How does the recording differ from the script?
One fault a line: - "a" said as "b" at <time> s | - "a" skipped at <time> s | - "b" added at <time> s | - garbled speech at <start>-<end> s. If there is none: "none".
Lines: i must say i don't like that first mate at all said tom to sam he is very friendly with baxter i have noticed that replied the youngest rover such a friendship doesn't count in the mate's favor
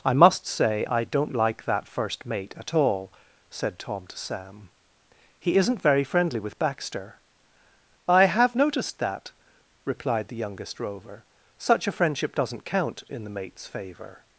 - "is" said as "isn't" at 5.6 s